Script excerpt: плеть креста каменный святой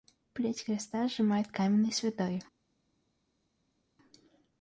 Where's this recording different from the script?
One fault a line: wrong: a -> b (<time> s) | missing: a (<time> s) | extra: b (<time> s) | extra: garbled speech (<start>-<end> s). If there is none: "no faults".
extra: сжимает (1.1 s)